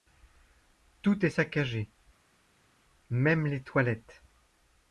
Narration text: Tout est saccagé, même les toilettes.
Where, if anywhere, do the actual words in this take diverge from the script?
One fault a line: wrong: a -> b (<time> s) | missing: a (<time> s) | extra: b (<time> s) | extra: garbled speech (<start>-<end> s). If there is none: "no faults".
no faults